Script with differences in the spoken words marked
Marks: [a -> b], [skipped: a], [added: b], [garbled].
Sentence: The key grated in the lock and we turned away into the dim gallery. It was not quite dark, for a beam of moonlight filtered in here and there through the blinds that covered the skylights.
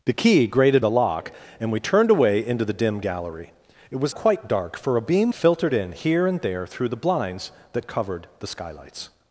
The key grated [skipped: in] the lock and we turned away into the dim gallery. It was [skipped: not] quite dark, for a beam [skipped: of moonlight] filtered in here and there through the blinds that covered the skylights.